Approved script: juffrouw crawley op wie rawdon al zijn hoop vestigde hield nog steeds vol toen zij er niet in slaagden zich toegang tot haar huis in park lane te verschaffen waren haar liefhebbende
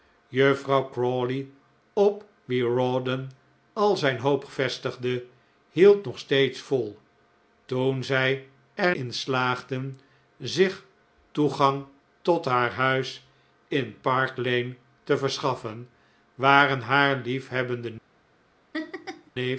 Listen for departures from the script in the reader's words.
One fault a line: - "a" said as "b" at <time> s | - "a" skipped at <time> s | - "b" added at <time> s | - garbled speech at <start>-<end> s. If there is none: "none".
- "niet" skipped at 8.9 s